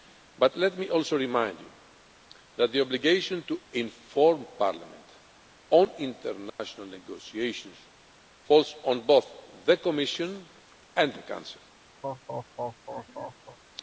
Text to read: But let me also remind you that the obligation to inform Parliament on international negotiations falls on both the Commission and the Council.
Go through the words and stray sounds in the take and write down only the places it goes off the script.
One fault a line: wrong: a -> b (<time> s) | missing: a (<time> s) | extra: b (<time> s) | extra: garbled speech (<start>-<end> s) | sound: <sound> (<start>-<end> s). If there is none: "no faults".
sound: dropout (6.5-6.6 s)
sound: laugh (12.0-13.6 s)